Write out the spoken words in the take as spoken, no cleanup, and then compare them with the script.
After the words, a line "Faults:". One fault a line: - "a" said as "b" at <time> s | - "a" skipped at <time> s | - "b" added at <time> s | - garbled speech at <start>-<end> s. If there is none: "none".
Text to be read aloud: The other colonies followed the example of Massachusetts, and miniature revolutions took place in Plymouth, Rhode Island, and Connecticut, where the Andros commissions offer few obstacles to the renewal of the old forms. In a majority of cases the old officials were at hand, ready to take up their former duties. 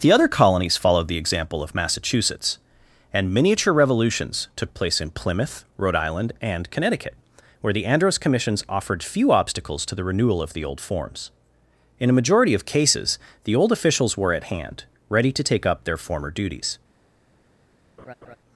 The other colonies followed the example of Massachusetts, and miniature revolutions took place in Plymouth, Rhode Island, and Connecticut, where the Andros commissions offered few obstacles to the renewal of the old forms. In a majority of cases the old officials were at hand, ready to take up their former duties.
Faults:
- "offer" said as "offered" at 8.7 s